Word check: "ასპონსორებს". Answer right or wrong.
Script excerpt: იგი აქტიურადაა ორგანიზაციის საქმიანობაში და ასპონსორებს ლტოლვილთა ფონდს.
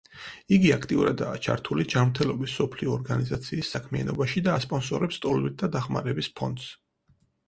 right